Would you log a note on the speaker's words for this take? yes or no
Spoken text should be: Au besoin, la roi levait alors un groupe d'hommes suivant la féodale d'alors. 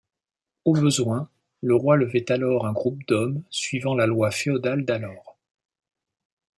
yes